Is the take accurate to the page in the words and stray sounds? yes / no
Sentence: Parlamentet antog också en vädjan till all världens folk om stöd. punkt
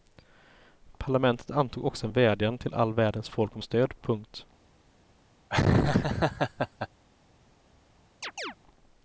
no